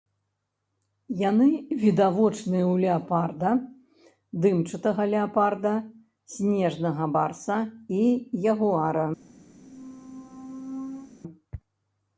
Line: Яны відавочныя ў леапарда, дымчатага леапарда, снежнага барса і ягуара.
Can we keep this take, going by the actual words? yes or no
yes